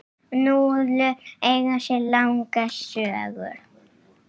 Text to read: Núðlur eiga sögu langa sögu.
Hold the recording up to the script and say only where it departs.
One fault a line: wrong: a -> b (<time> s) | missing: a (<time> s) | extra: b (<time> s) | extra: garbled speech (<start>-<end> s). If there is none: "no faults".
wrong: sögu -> sér (1.9 s)